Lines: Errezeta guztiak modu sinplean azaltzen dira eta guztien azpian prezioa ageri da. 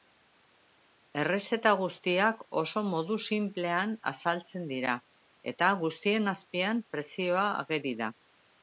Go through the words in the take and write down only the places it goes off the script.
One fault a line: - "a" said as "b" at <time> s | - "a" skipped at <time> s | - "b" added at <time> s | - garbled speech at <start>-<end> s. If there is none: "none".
- "oso" added at 2.6 s